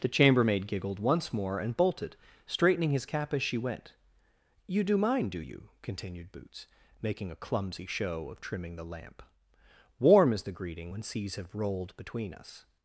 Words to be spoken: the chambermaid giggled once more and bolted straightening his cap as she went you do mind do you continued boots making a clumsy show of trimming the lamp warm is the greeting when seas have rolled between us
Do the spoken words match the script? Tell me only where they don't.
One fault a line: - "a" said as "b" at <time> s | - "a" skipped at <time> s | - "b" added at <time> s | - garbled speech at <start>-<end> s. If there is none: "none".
none